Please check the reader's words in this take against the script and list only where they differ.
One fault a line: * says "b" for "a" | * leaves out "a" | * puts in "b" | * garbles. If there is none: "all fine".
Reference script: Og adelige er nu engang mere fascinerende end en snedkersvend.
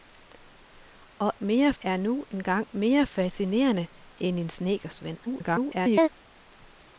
* says "mere" for "adelige"
* garbles